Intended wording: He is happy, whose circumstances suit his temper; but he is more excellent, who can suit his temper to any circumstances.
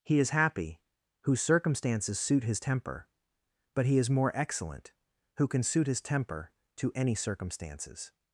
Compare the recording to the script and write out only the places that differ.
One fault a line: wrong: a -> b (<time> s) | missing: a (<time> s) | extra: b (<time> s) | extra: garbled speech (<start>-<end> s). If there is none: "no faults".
no faults